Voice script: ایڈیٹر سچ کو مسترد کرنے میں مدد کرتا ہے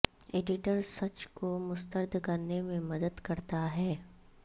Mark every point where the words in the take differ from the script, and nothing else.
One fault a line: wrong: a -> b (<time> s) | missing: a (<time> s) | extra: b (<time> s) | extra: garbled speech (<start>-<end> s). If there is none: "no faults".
no faults